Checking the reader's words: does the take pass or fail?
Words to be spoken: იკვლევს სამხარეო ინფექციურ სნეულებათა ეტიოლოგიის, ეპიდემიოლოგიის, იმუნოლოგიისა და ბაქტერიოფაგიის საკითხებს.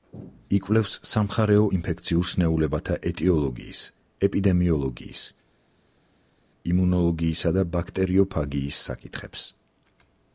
pass